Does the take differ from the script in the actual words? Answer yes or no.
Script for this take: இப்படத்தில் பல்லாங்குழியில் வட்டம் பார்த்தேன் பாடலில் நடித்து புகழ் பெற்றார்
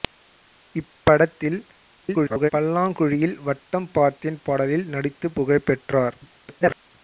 yes